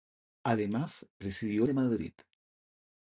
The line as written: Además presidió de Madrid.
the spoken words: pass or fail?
pass